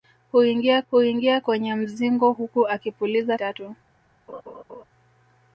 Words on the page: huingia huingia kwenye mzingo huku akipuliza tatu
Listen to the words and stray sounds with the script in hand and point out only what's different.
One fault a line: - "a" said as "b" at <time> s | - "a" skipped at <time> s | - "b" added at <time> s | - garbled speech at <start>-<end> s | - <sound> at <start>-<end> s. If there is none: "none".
- laugh at 4.3-4.8 s